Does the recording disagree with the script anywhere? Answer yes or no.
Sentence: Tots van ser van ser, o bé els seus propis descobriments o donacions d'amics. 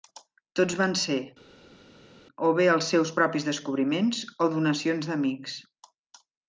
yes